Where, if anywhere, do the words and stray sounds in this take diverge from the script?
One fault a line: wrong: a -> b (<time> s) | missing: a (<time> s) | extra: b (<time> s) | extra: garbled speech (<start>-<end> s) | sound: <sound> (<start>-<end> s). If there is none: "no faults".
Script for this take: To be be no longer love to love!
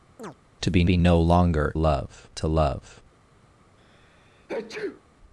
sound: chirp (0.2-0.4 s)
sound: sneeze (3.8-5.0 s)